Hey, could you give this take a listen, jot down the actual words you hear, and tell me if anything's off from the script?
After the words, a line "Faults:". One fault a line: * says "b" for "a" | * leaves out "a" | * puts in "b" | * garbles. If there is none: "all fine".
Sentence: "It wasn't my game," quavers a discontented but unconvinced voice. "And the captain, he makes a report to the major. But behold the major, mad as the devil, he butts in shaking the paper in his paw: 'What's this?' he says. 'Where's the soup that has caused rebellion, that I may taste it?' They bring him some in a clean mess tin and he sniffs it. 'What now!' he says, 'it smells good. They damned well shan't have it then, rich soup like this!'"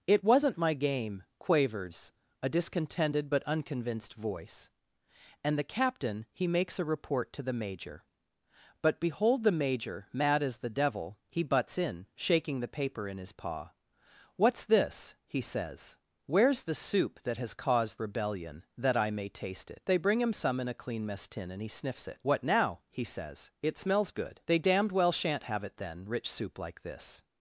"It wasn't my game," quavers a discontented but unconvinced voice. "And the captain, he makes a report to the major. But behold the major, mad as the devil, he butts in shaking the paper in his paw: 'What's this?' he says. 'Where's the soup that has caused rebellion, that I may taste it?' They bring him some in a clean mess tin and he sniffs it. 'What now!' he says, 'it smells good. They damned well shan't have it then, rich soup like this!'"
Faults:
all fine